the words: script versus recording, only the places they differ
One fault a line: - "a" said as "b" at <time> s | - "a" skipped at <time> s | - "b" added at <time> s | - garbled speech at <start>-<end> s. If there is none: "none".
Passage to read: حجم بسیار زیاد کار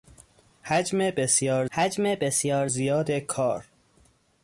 - "حجم بسیار" added at 1.7 s